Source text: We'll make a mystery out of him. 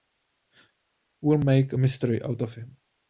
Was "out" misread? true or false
false